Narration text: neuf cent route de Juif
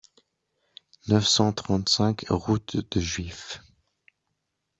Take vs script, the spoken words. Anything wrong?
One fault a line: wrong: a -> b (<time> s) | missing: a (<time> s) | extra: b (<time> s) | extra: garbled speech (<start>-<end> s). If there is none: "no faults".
extra: trente cinq (1.5 s)